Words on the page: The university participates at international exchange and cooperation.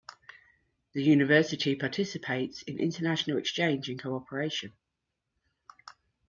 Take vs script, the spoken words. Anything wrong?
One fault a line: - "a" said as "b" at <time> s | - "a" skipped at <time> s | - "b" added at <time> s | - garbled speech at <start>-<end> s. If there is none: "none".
- "at" said as "in" at 2.6 s